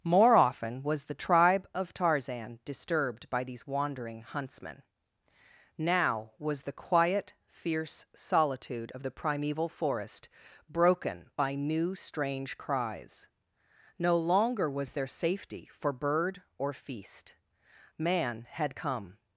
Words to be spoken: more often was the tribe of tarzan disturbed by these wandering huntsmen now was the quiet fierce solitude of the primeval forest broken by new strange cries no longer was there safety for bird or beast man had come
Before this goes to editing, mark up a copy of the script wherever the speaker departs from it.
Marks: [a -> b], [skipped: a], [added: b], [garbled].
more often was the tribe of tarzan disturbed by these wandering huntsmen now was the quiet fierce solitude of the primeval forest broken by new strange cries no longer was there safety for bird or [beast -> feast] man had come